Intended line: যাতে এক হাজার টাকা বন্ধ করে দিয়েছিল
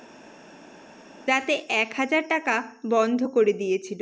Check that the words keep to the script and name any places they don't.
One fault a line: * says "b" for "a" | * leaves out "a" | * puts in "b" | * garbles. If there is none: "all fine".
all fine